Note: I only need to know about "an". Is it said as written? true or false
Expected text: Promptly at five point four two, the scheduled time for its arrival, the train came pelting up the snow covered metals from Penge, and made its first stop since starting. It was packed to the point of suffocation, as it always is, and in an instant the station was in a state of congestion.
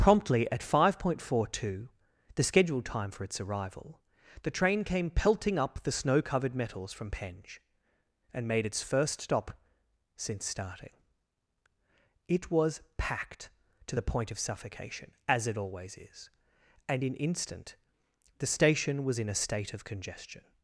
false